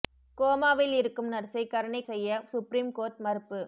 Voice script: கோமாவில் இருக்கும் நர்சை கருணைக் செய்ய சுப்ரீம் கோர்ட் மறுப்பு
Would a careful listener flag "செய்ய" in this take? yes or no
no